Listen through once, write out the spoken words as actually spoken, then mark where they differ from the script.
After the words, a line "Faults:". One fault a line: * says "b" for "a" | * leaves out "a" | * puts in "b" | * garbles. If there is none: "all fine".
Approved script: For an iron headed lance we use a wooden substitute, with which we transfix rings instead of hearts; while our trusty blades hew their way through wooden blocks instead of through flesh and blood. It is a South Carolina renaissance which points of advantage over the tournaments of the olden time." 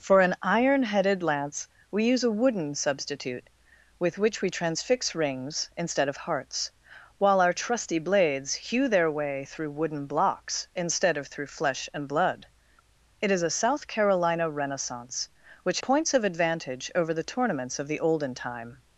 For an iron headed lance we use a wooden substitute, with which we transfix rings instead of hearts; while our trusty blades hew their way through wooden blocks instead of through flesh and blood. It is a South Carolina renaissance which points of advantage over the tournaments of the olden time."
Faults:
all fine